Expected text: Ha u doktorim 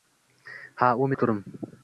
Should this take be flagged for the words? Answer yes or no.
no